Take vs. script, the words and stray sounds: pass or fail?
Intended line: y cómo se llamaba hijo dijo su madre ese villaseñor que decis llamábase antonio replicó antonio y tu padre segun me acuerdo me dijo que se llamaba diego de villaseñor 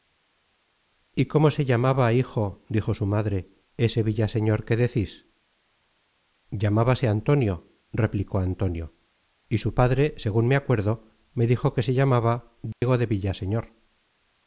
fail